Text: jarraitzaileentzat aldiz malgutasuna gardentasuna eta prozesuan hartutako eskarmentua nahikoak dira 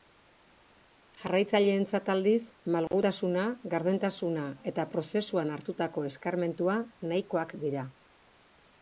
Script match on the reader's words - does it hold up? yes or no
yes